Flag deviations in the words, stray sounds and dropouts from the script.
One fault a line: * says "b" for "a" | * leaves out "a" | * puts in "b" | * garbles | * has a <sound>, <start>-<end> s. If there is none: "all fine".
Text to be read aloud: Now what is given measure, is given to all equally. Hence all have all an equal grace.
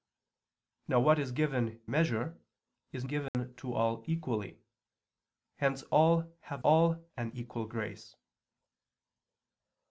* has a dropout, 3.3-3.3 s